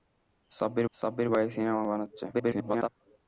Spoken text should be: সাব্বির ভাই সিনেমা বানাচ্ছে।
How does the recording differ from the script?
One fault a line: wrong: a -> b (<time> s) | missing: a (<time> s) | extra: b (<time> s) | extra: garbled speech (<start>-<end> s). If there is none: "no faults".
extra: সাব্বির (0.9 s)
extra: garbled speech (2.3-2.9 s)